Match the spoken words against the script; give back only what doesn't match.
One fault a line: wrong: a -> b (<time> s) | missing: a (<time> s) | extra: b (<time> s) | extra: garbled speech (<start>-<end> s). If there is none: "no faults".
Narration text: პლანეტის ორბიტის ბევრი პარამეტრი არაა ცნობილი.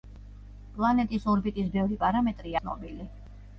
missing: არაა (2.6 s)